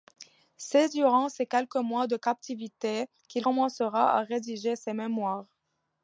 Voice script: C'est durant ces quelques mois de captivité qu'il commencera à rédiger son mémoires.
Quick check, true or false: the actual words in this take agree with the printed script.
false